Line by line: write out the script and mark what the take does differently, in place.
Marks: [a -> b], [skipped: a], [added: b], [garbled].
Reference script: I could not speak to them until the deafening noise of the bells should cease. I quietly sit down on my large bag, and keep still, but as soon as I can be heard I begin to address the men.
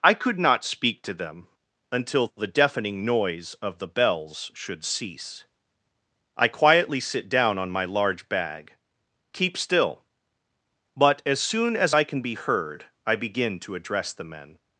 I could not speak to them until the deafening noise of the bells should cease. I quietly sit down on my large bag, [skipped: and] keep still, but as soon as I can be heard I begin to address the men.